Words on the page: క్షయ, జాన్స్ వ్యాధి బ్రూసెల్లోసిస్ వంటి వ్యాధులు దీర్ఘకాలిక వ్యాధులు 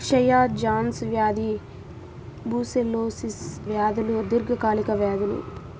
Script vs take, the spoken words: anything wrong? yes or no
yes